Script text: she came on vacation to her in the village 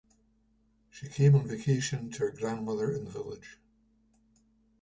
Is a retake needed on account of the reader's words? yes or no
yes